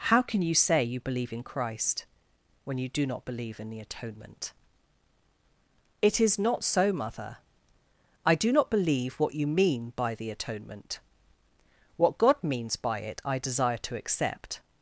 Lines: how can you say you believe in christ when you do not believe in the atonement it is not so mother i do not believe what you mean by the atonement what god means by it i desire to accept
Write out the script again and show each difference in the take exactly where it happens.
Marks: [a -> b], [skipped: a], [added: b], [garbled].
how can you say you believe in christ when you do not believe in the atonement it is not so mother i do not believe what you mean by the atonement what god means by it i desire to accept